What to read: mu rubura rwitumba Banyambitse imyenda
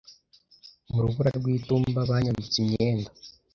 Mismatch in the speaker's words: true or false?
false